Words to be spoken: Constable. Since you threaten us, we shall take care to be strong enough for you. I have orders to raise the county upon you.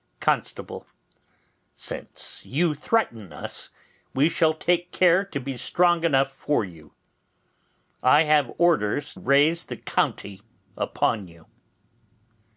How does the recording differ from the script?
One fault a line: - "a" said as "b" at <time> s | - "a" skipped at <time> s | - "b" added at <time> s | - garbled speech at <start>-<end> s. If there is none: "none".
- "to" skipped at 9.1 s